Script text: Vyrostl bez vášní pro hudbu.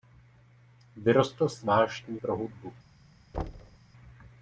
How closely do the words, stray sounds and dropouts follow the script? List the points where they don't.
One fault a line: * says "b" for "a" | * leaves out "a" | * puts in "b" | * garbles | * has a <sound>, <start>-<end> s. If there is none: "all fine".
* says "s" for "bez"
* has a thud, 3.3-3.8 s